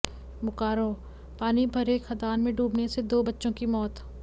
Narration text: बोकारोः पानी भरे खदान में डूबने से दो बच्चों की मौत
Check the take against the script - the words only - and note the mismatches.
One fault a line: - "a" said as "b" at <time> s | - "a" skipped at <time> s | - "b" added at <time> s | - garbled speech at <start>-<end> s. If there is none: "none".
none